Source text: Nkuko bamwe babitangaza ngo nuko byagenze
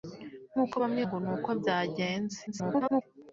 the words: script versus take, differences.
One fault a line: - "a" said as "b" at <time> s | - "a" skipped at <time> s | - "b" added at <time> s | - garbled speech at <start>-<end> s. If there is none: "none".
- "babitangaza" skipped at 1.0 s
- garbled speech at 2.5-3.0 s